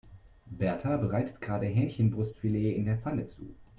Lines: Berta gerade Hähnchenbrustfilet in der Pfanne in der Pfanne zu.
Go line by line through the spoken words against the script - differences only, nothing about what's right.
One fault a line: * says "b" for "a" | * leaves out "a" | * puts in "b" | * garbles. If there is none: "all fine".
* puts in "bereitet"
* leaves out "in der Pfanne"